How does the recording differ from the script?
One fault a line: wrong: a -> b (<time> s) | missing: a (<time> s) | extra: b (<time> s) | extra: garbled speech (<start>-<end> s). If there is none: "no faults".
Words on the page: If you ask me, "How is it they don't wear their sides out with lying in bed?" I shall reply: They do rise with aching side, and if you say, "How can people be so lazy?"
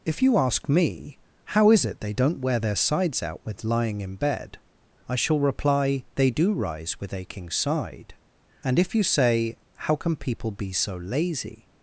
no faults